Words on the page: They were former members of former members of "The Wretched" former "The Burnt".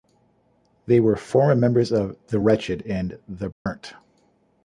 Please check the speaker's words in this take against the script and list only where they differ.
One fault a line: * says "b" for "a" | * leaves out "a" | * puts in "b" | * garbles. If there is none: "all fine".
* leaves out "former members of"
* says "and" for "former"